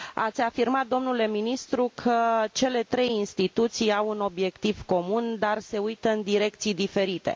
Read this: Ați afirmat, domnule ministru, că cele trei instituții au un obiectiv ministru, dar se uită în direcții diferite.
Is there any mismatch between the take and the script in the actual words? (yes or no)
yes